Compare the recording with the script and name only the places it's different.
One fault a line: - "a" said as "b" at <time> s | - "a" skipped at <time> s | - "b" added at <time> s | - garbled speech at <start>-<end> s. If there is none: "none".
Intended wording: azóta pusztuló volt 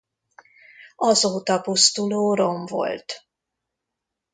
- "rom" added at 2.3 s